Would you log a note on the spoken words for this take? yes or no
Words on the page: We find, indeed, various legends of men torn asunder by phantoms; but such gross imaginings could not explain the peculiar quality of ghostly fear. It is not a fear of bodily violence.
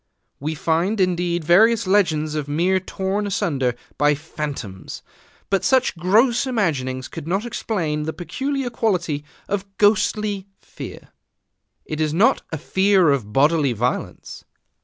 no